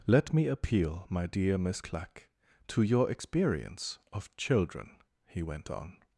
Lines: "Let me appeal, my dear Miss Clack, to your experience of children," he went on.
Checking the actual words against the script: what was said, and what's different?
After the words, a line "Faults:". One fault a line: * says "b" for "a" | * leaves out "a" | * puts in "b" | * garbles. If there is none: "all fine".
"Let me appeal, my dear Miss Clack, to your experience of children," he went on.
Faults:
all fine